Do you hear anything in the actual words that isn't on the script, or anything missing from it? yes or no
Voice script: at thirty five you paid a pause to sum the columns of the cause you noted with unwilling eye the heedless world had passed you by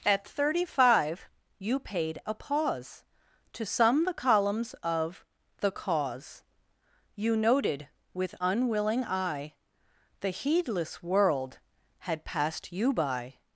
no